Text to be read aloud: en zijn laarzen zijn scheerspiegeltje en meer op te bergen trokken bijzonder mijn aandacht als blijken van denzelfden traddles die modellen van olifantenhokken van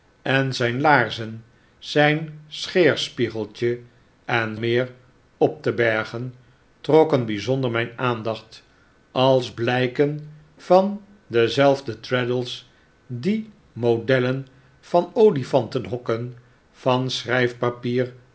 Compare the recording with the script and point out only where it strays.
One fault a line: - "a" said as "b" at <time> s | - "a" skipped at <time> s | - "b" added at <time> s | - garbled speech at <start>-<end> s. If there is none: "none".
none